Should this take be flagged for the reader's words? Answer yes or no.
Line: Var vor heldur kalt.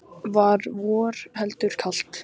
no